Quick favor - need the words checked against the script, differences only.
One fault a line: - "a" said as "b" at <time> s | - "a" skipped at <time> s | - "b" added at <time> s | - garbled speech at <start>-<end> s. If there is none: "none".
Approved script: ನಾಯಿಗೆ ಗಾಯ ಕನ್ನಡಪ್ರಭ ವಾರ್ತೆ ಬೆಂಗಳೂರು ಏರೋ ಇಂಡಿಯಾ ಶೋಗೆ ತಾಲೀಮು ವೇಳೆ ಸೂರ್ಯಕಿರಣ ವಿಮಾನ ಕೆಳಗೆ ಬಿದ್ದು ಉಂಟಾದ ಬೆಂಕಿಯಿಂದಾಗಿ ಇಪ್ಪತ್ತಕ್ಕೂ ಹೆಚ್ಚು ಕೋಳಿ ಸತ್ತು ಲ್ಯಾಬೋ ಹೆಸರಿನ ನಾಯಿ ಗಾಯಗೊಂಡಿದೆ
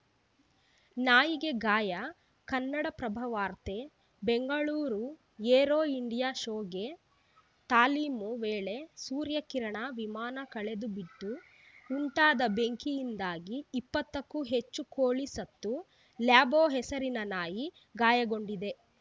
none